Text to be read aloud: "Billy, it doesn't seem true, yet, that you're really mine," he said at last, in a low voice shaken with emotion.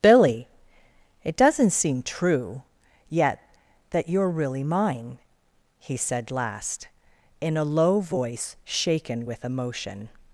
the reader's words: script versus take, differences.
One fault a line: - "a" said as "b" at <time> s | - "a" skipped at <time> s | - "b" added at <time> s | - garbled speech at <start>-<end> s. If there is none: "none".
- "at" skipped at 6.3 s